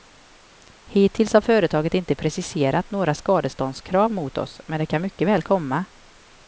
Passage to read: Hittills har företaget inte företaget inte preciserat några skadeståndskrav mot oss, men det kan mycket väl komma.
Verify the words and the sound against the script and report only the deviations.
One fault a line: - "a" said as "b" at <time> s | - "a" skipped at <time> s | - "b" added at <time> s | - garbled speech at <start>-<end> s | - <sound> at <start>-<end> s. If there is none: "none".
- "företaget inte" skipped at 2.1 s